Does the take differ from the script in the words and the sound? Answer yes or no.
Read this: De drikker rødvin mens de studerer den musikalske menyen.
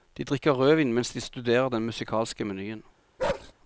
yes